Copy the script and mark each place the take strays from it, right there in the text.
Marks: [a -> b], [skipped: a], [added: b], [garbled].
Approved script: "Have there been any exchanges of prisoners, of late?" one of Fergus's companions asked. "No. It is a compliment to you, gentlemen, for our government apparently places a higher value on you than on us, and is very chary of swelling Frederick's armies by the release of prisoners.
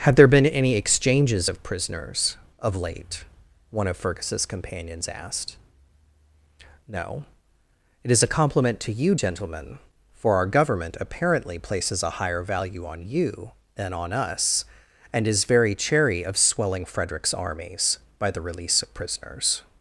["Have -> Had] there been any exchanges of prisoners, of late?" one of Fergus's companions asked. "No. It is a compliment to you, gentlemen, for our government apparently places a higher value on you than on us, and is very chary of swelling Frederick's armies by the release of prisoners.